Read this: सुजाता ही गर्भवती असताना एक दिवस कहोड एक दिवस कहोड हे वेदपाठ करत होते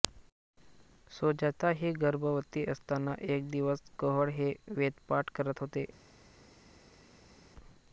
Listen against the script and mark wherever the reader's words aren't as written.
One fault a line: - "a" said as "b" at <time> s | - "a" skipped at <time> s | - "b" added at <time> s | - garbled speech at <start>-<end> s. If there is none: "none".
- "एक दिवस कहोड" skipped at 4.3 s